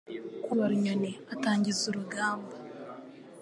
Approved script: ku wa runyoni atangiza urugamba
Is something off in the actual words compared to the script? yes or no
no